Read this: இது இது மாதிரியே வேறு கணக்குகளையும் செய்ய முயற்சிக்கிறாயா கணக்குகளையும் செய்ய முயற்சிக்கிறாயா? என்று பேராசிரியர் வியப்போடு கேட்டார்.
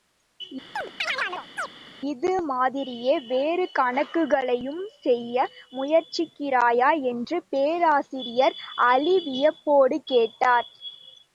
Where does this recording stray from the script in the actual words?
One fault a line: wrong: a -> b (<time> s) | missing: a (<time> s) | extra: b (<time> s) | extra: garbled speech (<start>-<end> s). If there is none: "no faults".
missing: இது (2.3 s)
missing: கணக்குகளையும் செய்ய முயற்சிக்கிறாயா (6.9 s)
extra: அலி (8.9 s)